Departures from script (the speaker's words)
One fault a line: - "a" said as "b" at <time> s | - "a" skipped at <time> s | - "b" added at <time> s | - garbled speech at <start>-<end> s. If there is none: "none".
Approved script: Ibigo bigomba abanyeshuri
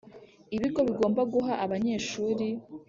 - "guha" added at 1.3 s